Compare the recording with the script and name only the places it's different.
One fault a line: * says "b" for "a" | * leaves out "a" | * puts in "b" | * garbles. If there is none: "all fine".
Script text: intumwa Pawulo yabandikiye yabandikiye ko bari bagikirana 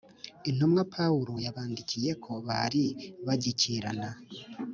* leaves out "yabandikiye"